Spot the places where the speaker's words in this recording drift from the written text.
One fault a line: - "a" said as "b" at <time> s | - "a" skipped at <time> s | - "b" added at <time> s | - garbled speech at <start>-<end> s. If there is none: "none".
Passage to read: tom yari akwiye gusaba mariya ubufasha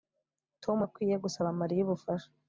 - "yari" skipped at 0.8 s